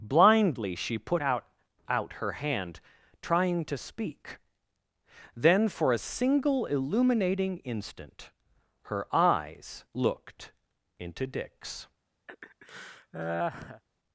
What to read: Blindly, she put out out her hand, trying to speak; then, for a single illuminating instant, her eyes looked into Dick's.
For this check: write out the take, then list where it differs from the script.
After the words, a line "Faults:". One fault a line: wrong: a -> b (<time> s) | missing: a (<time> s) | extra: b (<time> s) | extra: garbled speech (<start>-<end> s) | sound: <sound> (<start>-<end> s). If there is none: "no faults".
Blindly, she put out out her hand, trying to speak; then, for a single illuminating instant, her eyes looked into Dick's.
Faults:
sound: laugh (12.3-13.8 s)